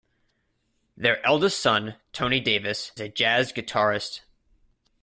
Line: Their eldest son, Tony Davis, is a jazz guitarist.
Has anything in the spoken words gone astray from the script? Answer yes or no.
yes